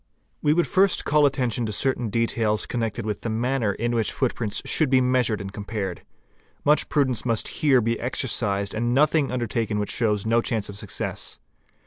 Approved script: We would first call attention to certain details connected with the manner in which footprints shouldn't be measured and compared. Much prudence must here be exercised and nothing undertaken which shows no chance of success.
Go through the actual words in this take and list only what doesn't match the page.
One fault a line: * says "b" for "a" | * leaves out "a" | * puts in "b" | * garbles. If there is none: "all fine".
* says "should" for "shouldn't"